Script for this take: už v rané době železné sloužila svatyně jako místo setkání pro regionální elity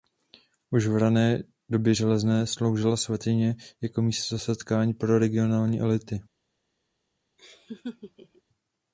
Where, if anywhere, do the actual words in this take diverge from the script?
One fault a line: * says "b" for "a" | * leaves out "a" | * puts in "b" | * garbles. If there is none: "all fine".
all fine